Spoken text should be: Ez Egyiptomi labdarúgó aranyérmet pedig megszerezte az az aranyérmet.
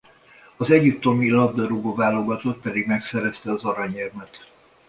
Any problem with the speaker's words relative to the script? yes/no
yes